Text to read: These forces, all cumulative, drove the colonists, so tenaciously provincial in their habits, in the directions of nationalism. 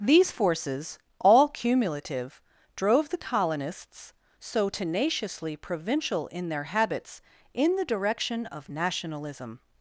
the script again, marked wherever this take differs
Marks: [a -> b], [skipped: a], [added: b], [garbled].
These forces, all cumulative, drove the colonists, so tenaciously provincial in their habits, in the [directions -> direction] of nationalism.